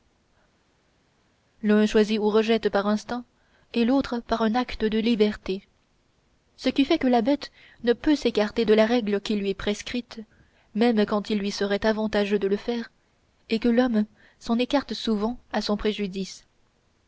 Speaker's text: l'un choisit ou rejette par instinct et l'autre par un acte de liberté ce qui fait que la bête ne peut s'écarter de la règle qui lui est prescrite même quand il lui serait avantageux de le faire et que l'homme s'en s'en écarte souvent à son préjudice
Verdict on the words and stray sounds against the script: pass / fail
fail